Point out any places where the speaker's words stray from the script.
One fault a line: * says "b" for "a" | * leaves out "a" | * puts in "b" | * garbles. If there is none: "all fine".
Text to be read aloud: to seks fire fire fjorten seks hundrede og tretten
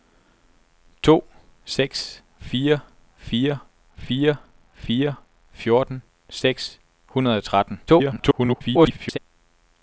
* puts in "fire fire"
* garbles